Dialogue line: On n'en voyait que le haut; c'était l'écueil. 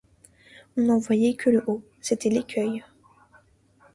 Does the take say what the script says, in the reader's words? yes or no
yes